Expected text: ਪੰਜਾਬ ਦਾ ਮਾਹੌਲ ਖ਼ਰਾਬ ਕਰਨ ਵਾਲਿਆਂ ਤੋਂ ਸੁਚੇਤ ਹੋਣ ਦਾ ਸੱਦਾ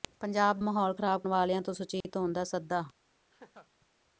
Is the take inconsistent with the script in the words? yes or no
yes